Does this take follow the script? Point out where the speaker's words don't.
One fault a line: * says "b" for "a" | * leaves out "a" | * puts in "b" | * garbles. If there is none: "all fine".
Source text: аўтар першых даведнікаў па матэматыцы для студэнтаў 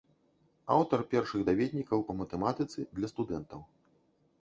all fine